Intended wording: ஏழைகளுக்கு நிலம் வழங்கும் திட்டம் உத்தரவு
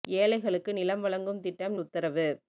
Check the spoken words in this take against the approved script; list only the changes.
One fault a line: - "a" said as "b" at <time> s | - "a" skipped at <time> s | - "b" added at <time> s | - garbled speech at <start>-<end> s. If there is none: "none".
none